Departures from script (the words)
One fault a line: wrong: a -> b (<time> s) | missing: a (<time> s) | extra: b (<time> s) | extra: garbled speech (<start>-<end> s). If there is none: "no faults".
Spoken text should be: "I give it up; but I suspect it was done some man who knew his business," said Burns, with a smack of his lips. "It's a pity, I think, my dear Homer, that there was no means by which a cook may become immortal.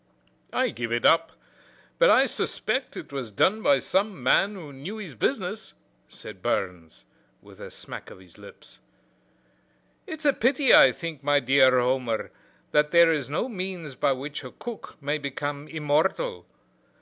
extra: by (3.6 s)
wrong: was -> is (13.1 s)